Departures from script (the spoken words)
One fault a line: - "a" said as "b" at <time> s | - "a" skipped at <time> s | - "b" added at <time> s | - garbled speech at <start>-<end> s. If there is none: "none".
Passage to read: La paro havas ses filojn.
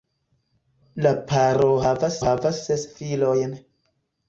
- "havas" added at 2.2 s